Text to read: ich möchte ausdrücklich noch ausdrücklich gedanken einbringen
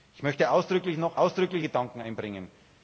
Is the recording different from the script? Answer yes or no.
no